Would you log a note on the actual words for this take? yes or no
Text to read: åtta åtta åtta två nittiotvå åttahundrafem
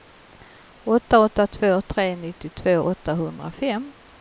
yes